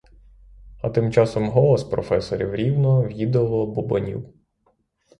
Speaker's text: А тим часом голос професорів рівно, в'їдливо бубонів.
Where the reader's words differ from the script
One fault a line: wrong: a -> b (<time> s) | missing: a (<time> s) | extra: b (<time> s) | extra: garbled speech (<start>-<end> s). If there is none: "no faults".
no faults